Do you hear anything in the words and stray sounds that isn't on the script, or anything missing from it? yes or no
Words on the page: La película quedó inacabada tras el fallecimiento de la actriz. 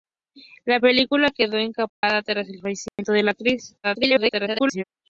yes